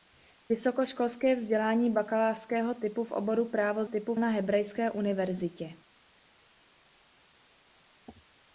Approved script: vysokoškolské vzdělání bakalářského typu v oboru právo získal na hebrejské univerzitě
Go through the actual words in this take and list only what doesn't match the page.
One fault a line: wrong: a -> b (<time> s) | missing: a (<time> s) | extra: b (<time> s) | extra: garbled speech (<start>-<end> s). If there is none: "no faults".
wrong: získal -> typu (3.8 s)